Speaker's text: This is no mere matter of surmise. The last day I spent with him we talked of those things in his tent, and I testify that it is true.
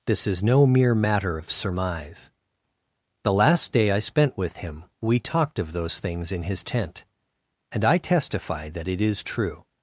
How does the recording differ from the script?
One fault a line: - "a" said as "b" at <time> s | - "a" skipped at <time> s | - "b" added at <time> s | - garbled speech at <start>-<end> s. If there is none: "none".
none